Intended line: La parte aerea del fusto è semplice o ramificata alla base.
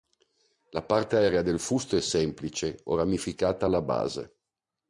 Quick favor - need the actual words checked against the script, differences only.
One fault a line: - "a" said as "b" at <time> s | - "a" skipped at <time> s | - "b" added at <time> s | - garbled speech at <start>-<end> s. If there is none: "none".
none